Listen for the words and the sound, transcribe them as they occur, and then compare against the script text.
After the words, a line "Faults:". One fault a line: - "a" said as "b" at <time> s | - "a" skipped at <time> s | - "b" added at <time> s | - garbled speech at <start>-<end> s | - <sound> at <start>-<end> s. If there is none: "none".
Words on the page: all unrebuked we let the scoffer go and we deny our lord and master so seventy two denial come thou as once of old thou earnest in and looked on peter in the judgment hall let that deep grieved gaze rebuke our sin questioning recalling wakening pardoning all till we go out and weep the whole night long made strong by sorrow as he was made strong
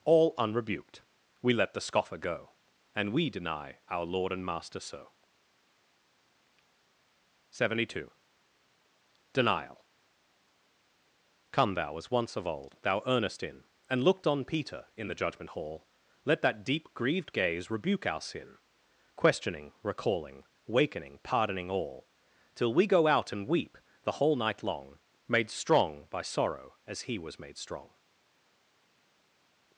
all unrebuked we let the scoffer go and we deny our lord and master so seventy two denial come thou as once of old thou earnest in and looked on peter in the judgment hall let that deep grieved gaze rebuke our sin questioning recalling wakening pardoning all till we go out and weep the whole night long made strong by sorrow as he was made strong
Faults:
none